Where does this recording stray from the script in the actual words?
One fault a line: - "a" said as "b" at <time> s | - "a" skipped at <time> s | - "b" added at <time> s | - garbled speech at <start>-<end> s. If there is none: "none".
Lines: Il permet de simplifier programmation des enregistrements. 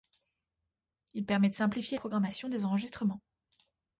none